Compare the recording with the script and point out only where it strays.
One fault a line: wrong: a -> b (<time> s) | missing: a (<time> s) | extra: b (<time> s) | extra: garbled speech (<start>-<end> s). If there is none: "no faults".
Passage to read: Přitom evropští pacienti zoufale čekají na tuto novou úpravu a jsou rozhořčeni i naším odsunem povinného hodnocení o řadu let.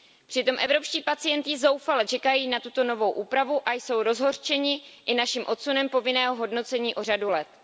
no faults